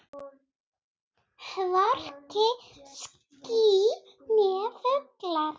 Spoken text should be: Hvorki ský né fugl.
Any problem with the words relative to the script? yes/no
no